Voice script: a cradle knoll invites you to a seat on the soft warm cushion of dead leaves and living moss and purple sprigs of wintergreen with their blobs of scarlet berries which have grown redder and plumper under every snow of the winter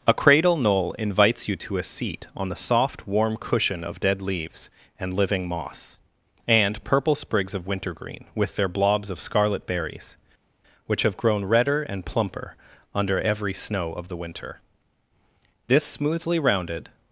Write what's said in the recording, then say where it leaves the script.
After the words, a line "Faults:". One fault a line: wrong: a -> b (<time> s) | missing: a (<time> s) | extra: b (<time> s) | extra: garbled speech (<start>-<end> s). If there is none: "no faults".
a cradle knoll invites you to a seat on the soft warm cushion of dead leaves and living moss and purple sprigs of wintergreen with their blobs of scarlet berries which have grown redder and plumper under every snow of the winter this smoothly rounded
Faults:
extra: this smoothly rounded (15.7 s)